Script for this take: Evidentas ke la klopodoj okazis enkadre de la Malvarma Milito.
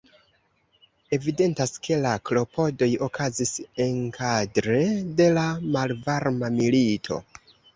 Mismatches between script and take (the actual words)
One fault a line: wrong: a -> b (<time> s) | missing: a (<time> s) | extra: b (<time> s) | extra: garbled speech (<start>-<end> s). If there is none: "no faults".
no faults